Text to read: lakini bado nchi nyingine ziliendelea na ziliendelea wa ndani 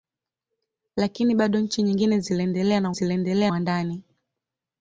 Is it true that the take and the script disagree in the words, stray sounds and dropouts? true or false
false